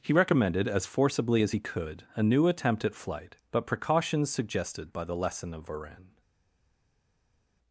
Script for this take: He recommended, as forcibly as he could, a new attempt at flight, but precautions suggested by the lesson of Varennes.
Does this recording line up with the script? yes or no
yes